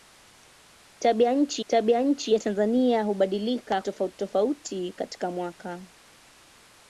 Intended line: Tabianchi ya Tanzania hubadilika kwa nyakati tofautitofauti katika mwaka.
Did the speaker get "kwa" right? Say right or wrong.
wrong